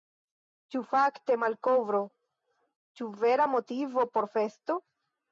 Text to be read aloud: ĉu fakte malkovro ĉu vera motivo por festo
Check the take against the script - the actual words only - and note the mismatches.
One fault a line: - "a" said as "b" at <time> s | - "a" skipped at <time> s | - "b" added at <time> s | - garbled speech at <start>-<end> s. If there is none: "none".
none